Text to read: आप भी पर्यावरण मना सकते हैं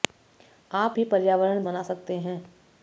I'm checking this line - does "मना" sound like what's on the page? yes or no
yes